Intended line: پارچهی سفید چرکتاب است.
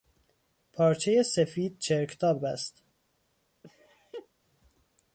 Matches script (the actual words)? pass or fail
pass